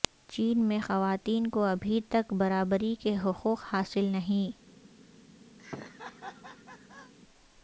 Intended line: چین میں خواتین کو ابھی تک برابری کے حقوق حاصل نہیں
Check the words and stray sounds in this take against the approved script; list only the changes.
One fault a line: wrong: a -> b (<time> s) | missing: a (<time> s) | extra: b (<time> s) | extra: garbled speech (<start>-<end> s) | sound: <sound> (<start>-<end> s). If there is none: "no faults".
sound: laugh (5.6-7.1 s)